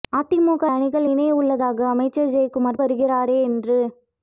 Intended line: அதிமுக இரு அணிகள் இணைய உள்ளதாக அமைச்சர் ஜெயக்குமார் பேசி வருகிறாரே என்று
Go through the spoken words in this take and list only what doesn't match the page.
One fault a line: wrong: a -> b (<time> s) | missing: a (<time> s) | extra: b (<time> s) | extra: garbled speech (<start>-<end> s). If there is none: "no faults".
missing: இரு (0.6 s)
missing: பேசி (2.8 s)